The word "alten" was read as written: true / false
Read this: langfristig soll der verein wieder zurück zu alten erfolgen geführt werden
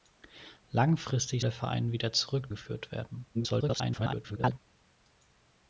false